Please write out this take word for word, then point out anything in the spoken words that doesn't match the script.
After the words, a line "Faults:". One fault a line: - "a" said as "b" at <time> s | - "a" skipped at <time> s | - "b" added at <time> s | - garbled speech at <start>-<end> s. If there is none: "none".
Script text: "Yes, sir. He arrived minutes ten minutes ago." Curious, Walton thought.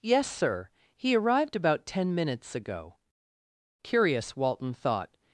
"Yes, sir. He arrived about ten minutes ago." Curious, Walton thought.
Faults:
- "minutes" said as "about" at 1.6 s